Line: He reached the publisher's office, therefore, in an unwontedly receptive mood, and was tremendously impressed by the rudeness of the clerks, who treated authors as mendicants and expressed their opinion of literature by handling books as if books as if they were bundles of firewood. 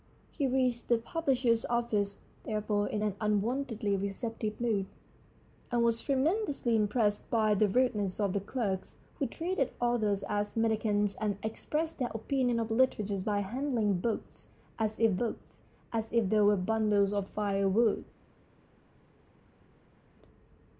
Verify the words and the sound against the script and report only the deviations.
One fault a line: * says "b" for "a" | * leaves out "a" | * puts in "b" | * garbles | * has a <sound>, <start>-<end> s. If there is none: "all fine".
all fine